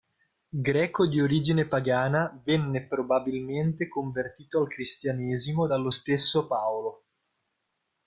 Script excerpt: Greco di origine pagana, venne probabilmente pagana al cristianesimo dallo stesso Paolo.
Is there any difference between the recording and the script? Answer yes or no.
yes